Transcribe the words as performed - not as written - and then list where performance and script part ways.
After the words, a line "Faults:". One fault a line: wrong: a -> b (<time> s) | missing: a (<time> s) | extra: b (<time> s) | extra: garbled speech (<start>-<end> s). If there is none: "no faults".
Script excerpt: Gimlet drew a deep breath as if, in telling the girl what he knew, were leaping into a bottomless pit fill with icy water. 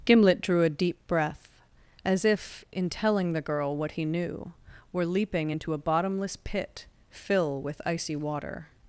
Gimlet drew a deep breath as if, in telling the girl what he knew, were leaping into a bottomless pit fill with icy water.
Faults:
no faults